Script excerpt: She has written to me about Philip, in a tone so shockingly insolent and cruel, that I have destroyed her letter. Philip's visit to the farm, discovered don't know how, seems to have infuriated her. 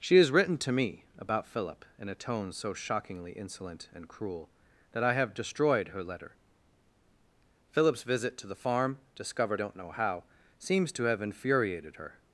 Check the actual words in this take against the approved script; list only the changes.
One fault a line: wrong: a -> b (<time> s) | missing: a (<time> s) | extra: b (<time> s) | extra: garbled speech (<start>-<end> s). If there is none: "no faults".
no faults